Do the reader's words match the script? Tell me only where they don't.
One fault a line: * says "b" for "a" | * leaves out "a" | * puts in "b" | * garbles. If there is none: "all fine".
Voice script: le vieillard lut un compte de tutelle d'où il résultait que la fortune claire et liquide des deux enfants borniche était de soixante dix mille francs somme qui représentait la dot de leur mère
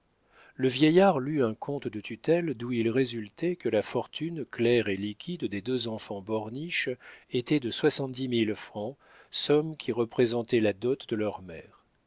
all fine